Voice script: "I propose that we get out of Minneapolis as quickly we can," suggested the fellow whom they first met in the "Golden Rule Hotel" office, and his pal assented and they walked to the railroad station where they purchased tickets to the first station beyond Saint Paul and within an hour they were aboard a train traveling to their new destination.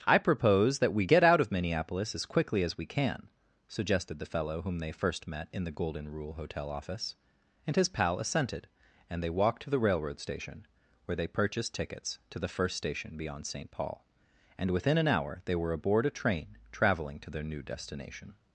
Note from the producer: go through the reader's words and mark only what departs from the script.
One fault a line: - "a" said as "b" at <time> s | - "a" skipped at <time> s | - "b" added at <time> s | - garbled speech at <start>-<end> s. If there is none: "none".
- "as" added at 2.6 s